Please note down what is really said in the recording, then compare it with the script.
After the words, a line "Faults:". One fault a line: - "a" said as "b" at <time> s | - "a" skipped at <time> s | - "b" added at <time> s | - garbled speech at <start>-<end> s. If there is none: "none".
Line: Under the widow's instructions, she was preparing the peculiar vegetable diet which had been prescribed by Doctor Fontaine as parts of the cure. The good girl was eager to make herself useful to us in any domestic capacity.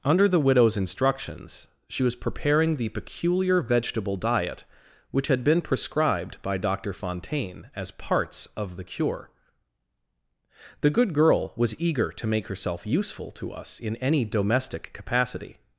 Under the widow's instructions, she was preparing the peculiar vegetable diet which had been prescribed by Doctor Fontaine as parts of the cure. The good girl was eager to make herself useful to us in any domestic capacity.
Faults:
none